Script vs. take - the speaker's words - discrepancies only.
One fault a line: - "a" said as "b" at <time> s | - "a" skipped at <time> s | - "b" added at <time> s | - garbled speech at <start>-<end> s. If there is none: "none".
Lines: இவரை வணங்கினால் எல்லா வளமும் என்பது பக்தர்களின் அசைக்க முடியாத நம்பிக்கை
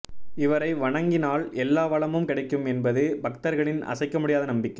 - "கிடைக்கும்" added at 2.2 s